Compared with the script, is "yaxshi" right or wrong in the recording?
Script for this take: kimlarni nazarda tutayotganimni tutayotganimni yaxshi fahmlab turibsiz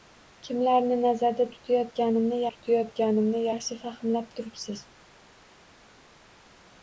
right